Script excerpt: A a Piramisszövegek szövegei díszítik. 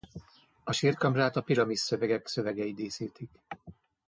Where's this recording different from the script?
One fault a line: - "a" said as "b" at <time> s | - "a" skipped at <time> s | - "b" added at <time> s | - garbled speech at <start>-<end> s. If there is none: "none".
- "sírkamrát" added at 0.7 s